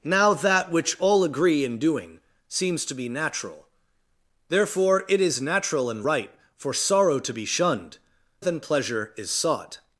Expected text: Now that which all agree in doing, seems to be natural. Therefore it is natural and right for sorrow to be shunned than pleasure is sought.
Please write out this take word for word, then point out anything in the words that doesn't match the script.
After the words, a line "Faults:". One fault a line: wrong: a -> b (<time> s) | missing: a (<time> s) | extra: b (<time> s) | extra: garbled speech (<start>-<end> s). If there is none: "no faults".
Now that which all agree in doing, seems to be natural. Therefore it is natural and right for sorrow to be shunned than pleasure is sought.
Faults:
no faults